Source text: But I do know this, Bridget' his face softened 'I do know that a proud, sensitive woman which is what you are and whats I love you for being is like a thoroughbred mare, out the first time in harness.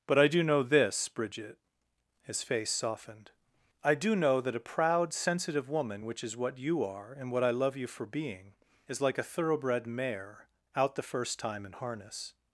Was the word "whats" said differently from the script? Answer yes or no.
yes